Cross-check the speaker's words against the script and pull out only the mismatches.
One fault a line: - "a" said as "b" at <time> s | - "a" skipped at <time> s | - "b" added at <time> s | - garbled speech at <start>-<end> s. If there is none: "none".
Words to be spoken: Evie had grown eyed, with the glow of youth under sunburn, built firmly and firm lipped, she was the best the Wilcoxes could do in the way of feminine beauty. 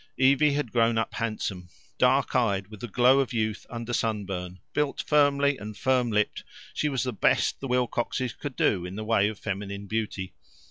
- "up handsome Dark" added at 1.0 s